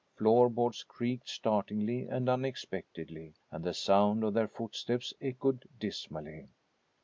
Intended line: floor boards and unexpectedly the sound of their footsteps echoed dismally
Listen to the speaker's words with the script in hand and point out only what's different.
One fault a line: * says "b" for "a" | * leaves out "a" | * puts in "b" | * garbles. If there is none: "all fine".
* puts in "creaked startlingly"
* puts in "and"